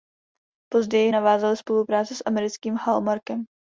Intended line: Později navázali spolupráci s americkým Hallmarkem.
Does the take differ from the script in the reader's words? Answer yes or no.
no